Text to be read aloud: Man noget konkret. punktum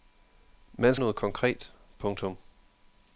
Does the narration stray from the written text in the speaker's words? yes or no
no